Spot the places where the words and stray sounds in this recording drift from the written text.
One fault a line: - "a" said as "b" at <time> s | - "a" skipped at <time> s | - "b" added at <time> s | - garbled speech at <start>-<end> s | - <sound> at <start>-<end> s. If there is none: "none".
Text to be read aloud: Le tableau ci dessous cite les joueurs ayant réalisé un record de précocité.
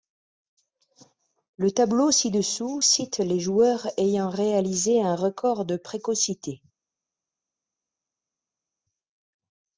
none